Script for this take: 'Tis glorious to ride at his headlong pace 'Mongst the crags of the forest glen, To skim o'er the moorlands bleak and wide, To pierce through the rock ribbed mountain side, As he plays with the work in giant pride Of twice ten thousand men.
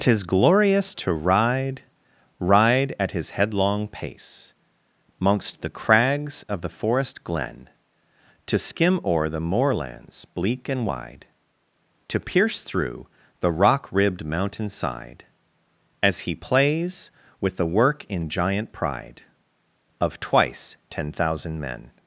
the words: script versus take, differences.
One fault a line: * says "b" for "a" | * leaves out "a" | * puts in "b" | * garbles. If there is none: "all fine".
* puts in "ride"